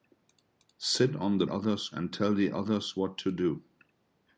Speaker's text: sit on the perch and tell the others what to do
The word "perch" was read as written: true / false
false